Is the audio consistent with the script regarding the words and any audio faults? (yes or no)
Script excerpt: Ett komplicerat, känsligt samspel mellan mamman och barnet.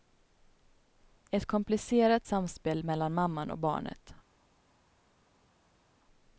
no